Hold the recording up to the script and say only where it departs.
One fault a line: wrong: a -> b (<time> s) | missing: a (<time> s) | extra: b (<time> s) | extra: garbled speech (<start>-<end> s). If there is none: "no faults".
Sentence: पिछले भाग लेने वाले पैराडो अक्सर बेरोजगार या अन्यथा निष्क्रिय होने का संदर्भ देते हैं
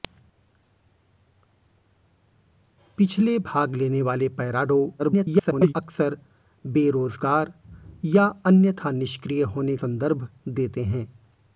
extra: garbled speech (5.0-5.7 s)
missing: का (9.8 s)